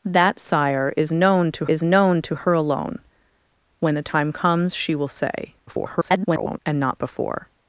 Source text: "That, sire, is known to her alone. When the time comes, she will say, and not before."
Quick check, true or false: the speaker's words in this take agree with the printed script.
false